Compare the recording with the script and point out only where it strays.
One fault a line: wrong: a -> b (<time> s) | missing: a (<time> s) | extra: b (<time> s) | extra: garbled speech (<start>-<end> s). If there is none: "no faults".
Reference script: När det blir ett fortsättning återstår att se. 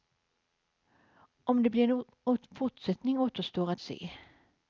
wrong: När -> Om (1.4 s)
wrong: ett -> en (2.0 s)